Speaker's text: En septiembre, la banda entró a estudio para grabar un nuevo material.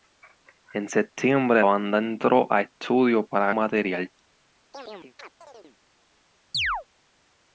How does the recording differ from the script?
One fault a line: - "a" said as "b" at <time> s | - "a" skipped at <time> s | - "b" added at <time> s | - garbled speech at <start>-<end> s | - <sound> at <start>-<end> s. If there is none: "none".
- "la" skipped at 1.6 s
- "grabar un nuevo" skipped at 3.5 s
- chirp at 4.7-5.8 s
- chirp at 6.5-6.8 s